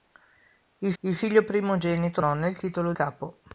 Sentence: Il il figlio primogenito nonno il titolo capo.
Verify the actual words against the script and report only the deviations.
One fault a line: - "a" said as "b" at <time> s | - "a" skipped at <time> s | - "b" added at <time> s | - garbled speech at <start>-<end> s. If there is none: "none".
none